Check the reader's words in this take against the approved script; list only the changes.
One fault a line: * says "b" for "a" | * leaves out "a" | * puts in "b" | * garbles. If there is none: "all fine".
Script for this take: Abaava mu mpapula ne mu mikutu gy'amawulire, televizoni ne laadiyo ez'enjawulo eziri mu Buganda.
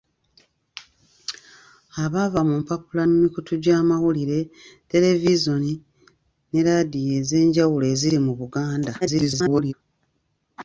* leaves out "ne"
* garbles